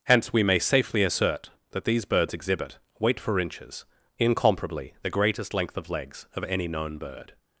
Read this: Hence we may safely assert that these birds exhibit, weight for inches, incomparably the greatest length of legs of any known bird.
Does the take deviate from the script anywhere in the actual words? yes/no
no